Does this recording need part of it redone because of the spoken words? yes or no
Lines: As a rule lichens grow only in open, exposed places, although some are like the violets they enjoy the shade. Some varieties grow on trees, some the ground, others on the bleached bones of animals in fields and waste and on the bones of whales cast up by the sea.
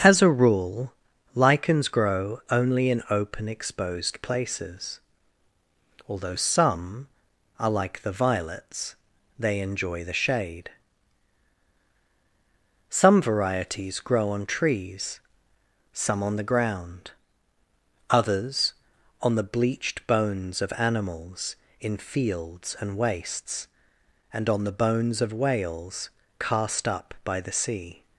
yes